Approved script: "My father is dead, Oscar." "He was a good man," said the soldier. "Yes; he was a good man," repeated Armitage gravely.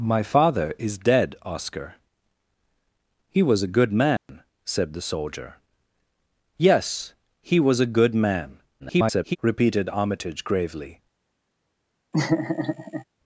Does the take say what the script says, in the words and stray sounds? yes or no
no